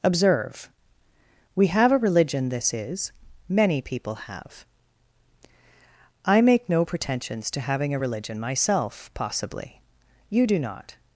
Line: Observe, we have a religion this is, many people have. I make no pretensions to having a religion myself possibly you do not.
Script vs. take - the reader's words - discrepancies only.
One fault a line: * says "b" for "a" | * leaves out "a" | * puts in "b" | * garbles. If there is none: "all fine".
all fine